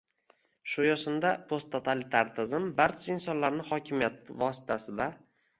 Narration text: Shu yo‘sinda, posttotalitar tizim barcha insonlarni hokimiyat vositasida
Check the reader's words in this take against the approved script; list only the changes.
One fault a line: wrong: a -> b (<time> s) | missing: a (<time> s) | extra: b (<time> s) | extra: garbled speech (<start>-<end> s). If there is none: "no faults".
no faults